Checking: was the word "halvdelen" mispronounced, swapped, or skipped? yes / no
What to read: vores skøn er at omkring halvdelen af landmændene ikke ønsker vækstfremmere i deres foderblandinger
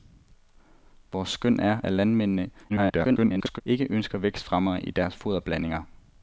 yes